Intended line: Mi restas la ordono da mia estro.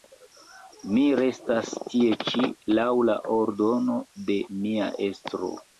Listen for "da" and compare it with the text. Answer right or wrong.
wrong